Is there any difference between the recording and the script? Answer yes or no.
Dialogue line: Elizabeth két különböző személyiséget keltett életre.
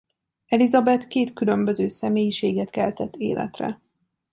no